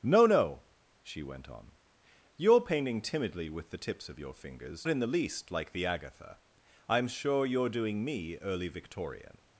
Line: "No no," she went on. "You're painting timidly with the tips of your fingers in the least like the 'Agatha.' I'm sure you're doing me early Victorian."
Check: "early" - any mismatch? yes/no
no